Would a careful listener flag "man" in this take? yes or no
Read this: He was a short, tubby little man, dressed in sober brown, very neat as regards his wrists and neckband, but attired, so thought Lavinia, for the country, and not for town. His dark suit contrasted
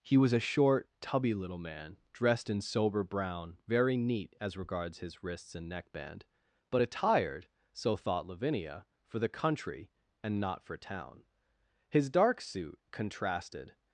no